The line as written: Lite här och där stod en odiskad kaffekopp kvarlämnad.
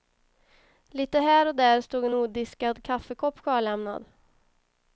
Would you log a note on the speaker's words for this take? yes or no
no